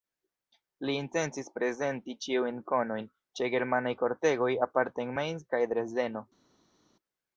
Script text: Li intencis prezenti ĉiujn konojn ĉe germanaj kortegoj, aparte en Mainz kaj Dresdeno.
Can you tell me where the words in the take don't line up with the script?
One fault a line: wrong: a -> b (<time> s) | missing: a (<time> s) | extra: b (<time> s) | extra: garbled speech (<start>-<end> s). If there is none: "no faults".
no faults